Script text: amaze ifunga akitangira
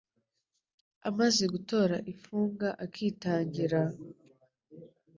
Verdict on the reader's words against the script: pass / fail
fail